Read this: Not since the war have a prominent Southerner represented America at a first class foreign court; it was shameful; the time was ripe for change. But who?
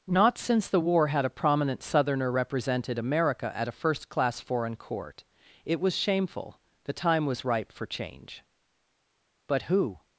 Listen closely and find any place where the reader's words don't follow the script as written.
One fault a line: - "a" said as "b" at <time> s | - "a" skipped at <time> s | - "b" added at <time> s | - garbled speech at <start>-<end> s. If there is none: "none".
- "have" said as "had" at 1.1 s